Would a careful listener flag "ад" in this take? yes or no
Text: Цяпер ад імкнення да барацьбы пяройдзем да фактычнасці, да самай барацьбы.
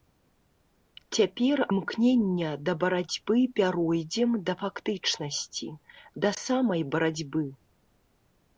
yes